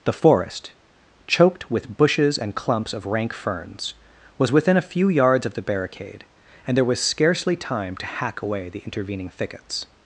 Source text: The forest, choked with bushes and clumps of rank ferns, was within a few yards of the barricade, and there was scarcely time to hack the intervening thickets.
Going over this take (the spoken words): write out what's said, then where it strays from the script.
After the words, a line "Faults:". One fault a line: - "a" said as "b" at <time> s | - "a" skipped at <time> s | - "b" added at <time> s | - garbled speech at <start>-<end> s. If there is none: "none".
The forest, choked with bushes and clumps of rank ferns, was within a few yards of the barricade, and there was scarcely time to hack away the intervening thickets.
Faults:
- "away" added at 8.4 s